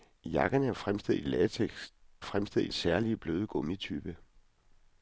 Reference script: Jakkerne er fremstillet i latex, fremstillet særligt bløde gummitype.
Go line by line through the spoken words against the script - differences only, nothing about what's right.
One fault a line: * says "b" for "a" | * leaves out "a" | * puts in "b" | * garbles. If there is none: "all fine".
all fine